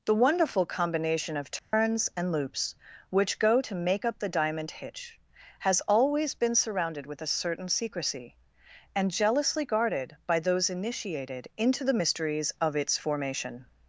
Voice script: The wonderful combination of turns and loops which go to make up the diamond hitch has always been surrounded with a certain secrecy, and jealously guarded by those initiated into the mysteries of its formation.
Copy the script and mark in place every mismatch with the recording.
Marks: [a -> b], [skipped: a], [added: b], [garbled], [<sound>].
The wonderful combination of turns [dropout] and loops which go to make up the diamond hitch has always been surrounded with a certain secrecy, and jealously guarded by those initiated into the mysteries of its formation.